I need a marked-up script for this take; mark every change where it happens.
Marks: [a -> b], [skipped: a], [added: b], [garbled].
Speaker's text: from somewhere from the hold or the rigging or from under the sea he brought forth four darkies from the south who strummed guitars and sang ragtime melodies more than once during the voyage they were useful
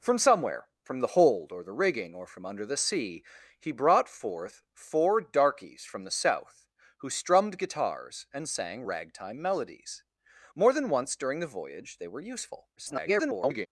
from somewhere from the hold or the rigging or from under the sea he brought forth four darkies from the south who strummed guitars and sang ragtime melodies more than once during the voyage they were useful [garbled]